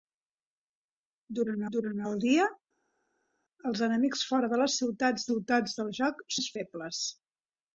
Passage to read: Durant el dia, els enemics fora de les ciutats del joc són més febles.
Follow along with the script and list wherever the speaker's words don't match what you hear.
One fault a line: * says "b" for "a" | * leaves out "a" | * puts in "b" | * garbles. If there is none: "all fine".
* puts in "durant"
* puts in "ciutats"
* leaves out "són"